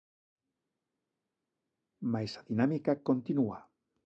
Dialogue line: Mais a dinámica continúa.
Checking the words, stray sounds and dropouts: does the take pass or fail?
pass